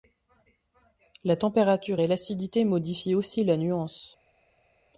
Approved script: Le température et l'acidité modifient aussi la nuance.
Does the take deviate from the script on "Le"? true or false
true